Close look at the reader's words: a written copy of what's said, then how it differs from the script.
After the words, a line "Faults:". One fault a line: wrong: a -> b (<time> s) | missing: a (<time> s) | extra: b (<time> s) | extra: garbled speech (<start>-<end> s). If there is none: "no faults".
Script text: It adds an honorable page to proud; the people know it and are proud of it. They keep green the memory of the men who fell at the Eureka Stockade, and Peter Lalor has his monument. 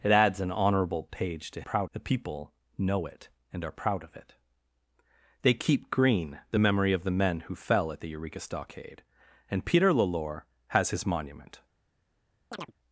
It adds an honorable page to proud; the people know it and are proud of it. They keep green the memory of the men who fell at the Eureka Stockade, and Peter Lalor has his monument.
Faults:
no faults